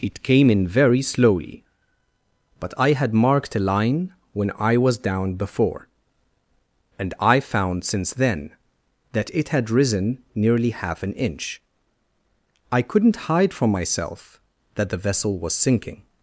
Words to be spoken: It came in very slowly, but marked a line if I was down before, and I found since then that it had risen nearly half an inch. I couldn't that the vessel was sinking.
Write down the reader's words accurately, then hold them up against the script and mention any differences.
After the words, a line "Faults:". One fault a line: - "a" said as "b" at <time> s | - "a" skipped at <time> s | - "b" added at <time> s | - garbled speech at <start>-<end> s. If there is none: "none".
It came in very slowly, but I had marked a line when I was down before, and I found since then that it had risen nearly half an inch. I couldn't hide from myself that the vessel was sinking.
Faults:
- "I had" added at 2.8 s
- "if" said as "when" at 4.3 s
- "hide from myself" added at 13.3 s